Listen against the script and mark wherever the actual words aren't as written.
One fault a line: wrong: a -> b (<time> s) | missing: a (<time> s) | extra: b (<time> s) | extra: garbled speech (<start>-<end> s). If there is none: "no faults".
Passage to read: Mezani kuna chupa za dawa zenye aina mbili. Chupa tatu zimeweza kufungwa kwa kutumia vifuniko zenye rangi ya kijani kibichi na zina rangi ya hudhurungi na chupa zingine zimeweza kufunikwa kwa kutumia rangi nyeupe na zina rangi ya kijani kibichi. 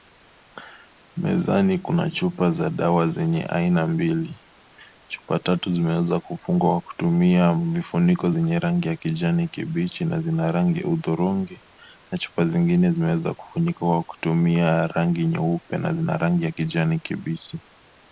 no faults